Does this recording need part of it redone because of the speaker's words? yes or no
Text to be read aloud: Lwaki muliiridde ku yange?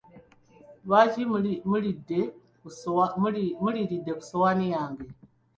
yes